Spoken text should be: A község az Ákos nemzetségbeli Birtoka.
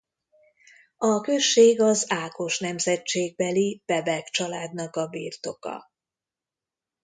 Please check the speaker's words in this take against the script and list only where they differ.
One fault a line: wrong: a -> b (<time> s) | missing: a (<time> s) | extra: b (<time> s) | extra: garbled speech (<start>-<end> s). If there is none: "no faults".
extra: Bebek családnak a (3.9 s)